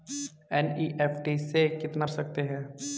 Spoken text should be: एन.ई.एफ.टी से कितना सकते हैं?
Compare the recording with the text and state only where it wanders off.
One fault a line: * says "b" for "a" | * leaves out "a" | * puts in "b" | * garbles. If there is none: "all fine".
all fine